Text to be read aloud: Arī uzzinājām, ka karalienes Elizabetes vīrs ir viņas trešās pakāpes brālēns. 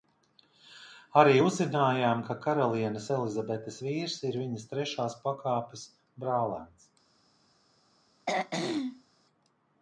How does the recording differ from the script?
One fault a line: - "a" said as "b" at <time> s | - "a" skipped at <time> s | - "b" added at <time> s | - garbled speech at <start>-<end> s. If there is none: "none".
none